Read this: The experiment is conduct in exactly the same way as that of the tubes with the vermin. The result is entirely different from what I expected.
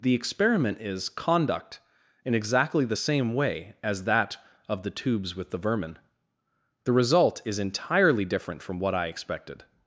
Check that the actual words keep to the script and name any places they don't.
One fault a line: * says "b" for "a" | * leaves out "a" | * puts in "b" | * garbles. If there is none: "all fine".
all fine